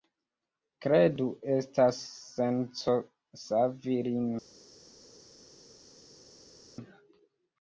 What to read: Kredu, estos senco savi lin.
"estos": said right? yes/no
no